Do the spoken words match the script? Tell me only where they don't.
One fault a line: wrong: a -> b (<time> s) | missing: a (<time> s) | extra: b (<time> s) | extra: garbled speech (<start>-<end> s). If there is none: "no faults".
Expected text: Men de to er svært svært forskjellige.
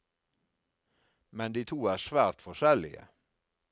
missing: svært (2.4 s)